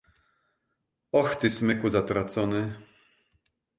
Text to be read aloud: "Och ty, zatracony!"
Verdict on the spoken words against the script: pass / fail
fail